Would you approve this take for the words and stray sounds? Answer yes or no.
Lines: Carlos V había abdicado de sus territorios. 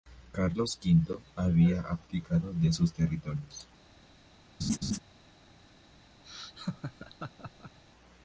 no